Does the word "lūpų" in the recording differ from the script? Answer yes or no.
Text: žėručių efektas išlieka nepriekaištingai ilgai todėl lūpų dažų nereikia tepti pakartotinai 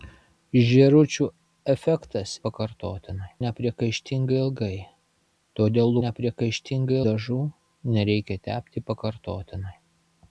yes